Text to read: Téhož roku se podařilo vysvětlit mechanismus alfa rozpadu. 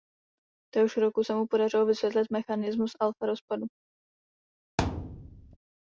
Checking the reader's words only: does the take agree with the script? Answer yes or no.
no